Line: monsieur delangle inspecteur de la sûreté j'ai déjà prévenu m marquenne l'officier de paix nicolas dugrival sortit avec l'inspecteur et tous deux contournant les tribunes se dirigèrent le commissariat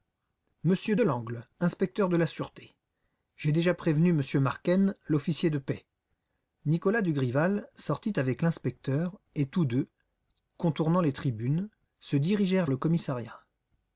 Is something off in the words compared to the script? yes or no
no